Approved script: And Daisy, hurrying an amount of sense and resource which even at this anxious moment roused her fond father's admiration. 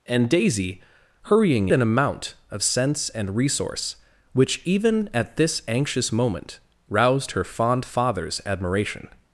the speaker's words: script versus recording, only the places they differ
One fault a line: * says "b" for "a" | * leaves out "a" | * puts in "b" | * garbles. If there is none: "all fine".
all fine